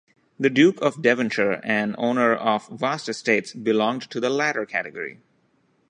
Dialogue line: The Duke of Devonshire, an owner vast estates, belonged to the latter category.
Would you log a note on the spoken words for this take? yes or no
yes